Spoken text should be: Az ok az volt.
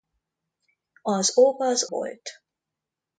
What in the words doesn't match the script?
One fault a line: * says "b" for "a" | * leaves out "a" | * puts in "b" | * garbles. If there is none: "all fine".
all fine